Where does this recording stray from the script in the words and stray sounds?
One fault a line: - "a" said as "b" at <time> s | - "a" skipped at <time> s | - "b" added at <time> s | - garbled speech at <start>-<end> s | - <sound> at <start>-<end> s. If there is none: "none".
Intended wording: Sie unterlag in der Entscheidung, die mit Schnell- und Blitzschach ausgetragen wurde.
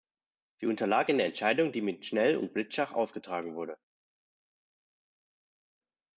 none